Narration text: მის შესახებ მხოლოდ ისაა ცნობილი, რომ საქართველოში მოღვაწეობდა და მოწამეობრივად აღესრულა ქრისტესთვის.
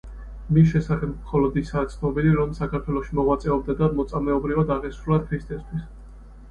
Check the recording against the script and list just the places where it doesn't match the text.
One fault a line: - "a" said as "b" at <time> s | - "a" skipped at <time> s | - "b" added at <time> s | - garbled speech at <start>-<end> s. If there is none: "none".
none